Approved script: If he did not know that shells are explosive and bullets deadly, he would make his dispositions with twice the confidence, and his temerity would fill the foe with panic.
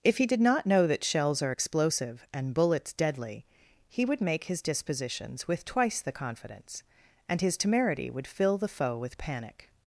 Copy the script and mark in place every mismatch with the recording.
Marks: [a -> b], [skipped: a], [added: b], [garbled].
If he did not know that shells are explosive and bullets deadly, he would make his dispositions with twice the confidence, and his temerity would fill the foe with panic.